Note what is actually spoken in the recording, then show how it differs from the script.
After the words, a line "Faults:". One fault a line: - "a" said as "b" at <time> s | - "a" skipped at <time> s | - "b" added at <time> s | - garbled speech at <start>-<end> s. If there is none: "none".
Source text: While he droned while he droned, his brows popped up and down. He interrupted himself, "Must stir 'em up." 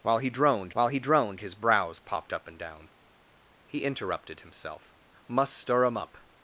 While he droned while he droned, his brows popped up and down. He interrupted himself, "Must stir 'em up."
Faults:
none